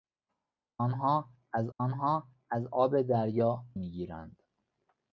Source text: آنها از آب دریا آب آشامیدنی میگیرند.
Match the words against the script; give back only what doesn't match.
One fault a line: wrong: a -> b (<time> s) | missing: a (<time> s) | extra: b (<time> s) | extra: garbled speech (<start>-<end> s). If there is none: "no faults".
wrong: آب دریا -> آنها از (1.8 s)
wrong: آشامیدنی -> دریا (3.0 s)